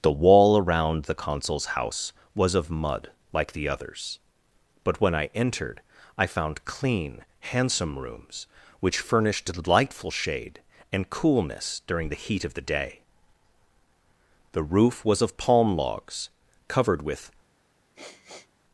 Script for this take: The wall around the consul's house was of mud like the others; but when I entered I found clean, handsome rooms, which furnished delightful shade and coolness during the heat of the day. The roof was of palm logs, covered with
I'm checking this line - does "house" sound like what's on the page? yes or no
yes